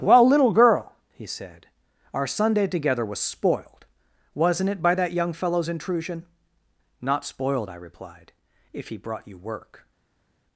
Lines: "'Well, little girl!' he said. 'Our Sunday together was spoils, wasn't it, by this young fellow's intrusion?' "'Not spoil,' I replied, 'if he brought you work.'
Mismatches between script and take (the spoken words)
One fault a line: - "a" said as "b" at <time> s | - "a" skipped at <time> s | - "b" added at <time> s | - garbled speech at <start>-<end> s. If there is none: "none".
- "spoils" said as "spoiled" at 3.2 s
- "this" said as "that" at 5.0 s
- "spoil" said as "spoiled" at 7.2 s